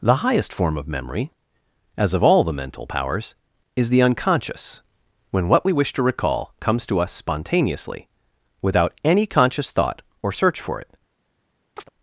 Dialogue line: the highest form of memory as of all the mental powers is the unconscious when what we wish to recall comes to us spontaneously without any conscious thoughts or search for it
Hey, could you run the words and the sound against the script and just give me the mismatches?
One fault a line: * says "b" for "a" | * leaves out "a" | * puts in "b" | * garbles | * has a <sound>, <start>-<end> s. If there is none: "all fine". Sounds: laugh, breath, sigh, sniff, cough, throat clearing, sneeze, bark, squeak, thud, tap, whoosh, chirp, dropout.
* says "thought" for "thoughts"
* has a chirp, 11.8-11.9 s